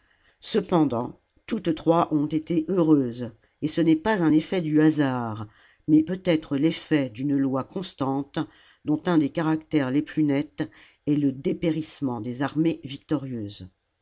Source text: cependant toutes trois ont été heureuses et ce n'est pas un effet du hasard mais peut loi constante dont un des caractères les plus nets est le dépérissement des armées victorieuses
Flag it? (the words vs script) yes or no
yes